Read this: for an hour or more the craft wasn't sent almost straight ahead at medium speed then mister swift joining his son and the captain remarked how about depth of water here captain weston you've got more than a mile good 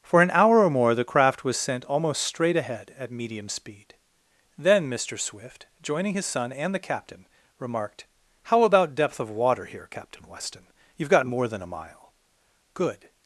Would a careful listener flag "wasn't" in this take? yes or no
yes